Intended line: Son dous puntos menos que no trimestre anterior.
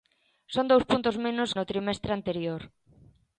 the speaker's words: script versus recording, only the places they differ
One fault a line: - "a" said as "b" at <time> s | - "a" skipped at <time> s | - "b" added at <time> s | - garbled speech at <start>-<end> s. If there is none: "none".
- "que" skipped at 1.5 s